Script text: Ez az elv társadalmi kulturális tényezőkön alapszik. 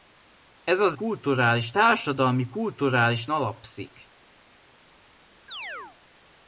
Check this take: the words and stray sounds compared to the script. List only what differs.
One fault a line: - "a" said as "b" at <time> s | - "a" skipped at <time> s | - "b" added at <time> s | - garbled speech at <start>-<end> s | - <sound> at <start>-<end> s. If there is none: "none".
- "elv" said as "kulturális" at 0.9 s
- "tényezőkön" skipped at 3.3 s
- chirp at 5.5-6.0 s